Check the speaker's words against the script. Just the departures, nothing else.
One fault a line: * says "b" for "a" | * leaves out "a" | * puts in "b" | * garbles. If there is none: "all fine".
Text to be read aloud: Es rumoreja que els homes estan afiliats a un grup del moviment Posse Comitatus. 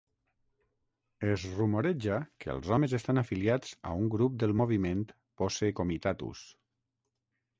all fine